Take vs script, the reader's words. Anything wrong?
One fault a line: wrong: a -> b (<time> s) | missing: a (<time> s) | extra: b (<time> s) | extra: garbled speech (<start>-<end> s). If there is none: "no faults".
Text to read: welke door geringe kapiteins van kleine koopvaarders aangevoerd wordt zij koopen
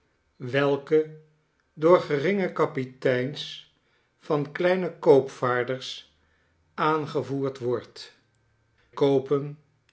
missing: zij (8.2 s)